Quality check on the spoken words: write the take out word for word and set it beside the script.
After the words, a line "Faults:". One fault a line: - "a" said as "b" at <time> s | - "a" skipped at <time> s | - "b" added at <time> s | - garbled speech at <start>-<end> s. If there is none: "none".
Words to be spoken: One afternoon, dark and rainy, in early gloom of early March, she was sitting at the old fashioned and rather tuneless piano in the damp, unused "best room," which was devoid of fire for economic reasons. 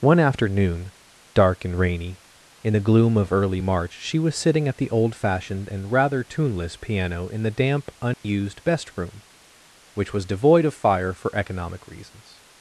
One afternoon, dark and rainy, in the gloom of early March, she was sitting at the old fashioned and rather tuneless piano in the damp, unused "best room," which was devoid of fire for economic reasons.
Faults:
- "early" said as "the" at 2.7 s